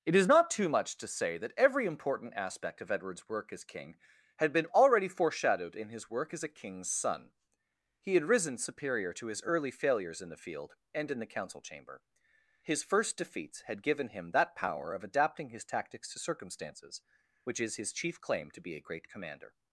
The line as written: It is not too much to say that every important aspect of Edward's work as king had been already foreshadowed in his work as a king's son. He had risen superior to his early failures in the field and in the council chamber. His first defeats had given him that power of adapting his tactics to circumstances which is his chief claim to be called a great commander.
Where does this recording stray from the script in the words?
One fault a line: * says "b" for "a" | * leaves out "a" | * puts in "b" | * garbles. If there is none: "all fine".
* leaves out "called"